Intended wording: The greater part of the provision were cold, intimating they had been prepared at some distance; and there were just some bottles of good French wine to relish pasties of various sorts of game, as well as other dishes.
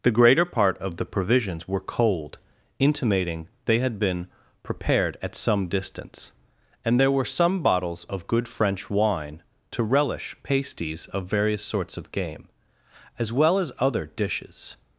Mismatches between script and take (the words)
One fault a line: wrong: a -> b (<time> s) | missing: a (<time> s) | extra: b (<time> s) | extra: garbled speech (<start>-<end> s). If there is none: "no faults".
wrong: provision -> provisions (1.1 s)
missing: just (7.2 s)